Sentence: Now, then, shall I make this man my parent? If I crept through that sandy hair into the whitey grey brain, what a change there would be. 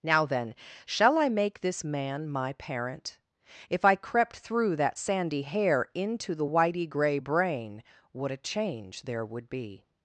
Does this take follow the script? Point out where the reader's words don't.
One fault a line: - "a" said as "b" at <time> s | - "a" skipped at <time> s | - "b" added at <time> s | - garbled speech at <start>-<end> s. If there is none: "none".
none